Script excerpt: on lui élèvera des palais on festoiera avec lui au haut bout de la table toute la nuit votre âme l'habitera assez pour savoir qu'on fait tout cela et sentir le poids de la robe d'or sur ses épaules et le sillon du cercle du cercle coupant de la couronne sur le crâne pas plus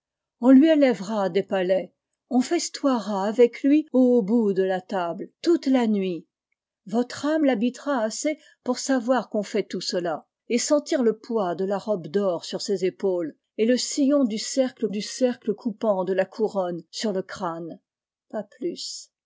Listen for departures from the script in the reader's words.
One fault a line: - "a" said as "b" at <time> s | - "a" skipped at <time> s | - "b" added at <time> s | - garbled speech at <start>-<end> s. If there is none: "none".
none